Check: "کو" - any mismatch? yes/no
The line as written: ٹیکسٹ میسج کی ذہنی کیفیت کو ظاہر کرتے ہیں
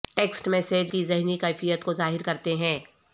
no